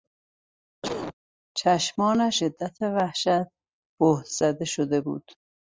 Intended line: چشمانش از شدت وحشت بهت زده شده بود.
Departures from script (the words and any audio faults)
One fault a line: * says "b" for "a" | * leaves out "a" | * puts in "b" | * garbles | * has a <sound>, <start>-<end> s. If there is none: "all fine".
* has a cough, 0.8-1.1 s
* leaves out "از"